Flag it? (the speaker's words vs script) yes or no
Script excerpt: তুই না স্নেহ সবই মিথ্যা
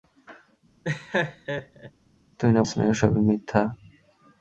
no